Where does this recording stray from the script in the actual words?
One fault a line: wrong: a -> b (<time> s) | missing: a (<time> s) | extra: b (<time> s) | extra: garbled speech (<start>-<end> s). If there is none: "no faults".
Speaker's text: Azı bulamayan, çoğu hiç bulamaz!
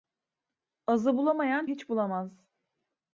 missing: çoğu (1.7 s)